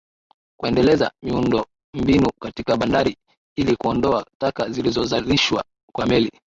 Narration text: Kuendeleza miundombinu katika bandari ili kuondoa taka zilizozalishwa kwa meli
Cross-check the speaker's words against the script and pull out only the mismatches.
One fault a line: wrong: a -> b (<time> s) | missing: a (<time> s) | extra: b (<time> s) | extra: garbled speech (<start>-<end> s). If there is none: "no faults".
no faults